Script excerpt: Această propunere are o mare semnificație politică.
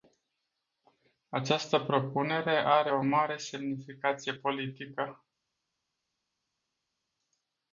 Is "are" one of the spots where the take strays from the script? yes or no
no